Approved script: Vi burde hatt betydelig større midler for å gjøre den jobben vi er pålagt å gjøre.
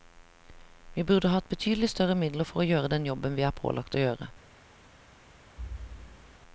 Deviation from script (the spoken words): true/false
false